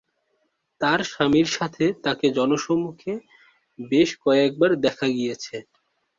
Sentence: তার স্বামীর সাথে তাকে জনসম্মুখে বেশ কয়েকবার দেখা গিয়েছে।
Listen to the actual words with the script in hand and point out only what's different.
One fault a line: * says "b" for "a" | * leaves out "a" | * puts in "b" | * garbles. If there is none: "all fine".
all fine